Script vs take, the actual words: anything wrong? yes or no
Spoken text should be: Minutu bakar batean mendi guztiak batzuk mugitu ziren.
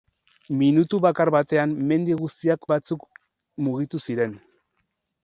no